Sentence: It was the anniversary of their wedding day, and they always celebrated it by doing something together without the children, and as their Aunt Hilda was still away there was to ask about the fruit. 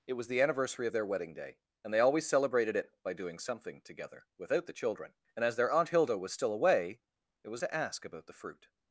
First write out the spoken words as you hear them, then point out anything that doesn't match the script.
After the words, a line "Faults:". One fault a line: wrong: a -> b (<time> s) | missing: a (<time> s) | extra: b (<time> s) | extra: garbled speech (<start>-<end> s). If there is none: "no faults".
It was the anniversary of their wedding day, and they always celebrated it by doing something together without the children, and as their Aunt Hilda was still away there was to ask about the fruit.
Faults:
no faults